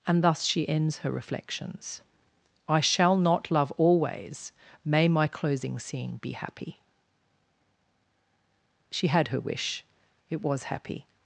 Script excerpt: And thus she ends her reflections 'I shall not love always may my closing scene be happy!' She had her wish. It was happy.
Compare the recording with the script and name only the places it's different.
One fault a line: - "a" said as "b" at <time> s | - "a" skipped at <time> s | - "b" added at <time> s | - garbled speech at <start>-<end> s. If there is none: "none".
none